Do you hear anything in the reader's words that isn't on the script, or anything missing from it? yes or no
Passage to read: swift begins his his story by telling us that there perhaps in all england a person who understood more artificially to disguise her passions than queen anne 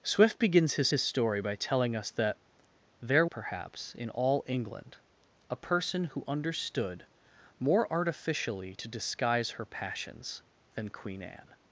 no